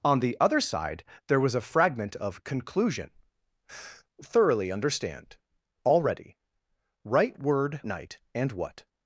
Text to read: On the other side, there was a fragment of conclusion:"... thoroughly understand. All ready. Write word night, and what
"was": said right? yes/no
yes